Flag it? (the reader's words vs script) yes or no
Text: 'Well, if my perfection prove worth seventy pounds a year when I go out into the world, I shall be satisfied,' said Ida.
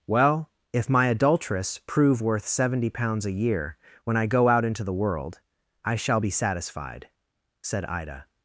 yes